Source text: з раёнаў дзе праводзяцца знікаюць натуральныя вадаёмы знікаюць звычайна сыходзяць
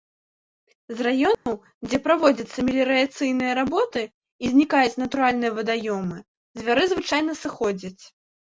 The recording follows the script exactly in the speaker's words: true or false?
false